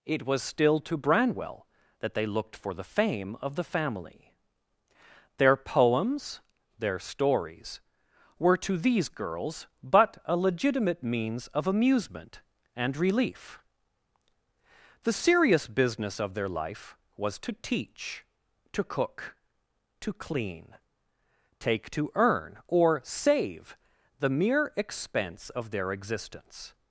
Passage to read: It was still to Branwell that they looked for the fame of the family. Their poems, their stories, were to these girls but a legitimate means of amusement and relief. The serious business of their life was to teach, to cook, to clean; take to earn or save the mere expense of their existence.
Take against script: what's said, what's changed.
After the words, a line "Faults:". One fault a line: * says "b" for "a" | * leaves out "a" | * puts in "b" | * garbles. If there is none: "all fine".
It was still to Branwell that they looked for the fame of the family. Their poems, their stories, were to these girls but a legitimate means of amusement and relief. The serious business of their life was to teach, to cook, to clean; take to earn or save the mere expense of their existence.
Faults:
all fine